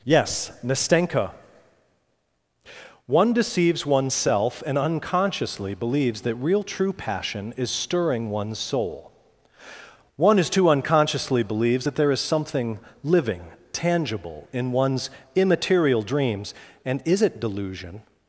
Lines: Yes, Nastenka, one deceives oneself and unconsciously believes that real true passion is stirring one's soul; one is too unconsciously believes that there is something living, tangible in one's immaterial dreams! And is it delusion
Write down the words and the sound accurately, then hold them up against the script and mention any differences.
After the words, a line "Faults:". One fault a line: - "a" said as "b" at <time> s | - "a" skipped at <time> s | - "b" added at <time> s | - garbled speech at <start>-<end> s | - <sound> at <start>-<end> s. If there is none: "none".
Yes, Nastenka, one deceives oneself and unconsciously believes that real true passion is stirring one's soul; one is too unconsciously believes that there is something living, tangible in one's immaterial dreams! And is it delusion
Faults:
none